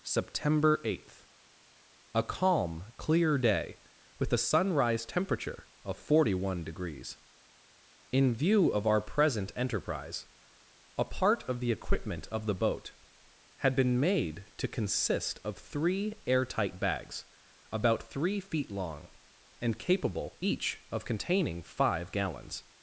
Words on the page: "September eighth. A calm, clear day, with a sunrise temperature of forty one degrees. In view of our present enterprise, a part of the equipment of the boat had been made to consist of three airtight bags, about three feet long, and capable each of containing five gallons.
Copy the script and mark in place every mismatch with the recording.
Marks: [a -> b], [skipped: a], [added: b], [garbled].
"September eighth. A calm, clear day, with a sunrise temperature of forty one degrees. In view of our present enterprise, a part of the equipment of the boat had been made to consist of three airtight bags, about three feet long, and capable each of containing five gallons.